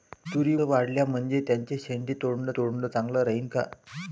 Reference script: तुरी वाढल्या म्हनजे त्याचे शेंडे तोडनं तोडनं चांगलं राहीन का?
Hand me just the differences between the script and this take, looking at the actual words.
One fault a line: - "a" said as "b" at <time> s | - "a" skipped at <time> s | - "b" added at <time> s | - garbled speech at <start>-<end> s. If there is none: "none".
none